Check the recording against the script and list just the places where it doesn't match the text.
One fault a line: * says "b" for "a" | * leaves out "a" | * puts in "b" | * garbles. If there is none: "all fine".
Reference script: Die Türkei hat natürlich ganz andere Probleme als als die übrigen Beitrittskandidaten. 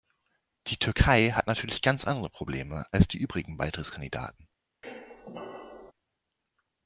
* leaves out "als"